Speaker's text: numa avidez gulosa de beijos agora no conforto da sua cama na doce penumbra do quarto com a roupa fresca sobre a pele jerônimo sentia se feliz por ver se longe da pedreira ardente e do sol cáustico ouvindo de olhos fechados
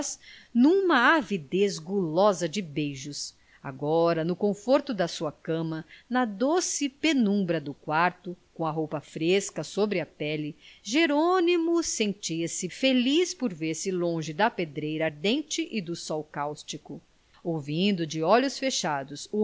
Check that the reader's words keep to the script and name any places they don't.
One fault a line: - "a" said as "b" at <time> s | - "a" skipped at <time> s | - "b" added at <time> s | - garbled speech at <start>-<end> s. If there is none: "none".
none